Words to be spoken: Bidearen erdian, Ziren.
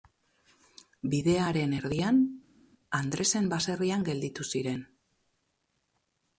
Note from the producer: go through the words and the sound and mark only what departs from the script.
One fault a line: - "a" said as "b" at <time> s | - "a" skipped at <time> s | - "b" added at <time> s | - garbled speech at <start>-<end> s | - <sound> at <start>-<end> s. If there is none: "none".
- "Andresen baserrian gelditu" added at 3.0 s